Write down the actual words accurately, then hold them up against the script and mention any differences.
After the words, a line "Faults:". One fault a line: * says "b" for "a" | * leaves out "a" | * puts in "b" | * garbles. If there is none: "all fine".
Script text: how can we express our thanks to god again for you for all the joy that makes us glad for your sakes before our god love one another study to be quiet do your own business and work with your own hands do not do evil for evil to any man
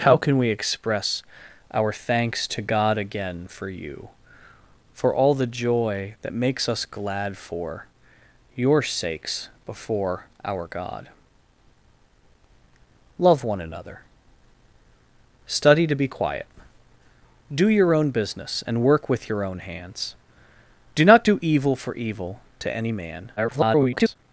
how can we express our thanks to god again for you for all the joy that makes us glad for your sakes before our god love one another study to be quiet do your own business and work with your own hands do not do evil for evil to any man [garbled]
Faults:
* garbles